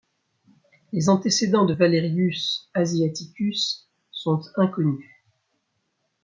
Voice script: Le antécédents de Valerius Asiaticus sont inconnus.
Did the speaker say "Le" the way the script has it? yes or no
no